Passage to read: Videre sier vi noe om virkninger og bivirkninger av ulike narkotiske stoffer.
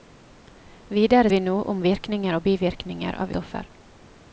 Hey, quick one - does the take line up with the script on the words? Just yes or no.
no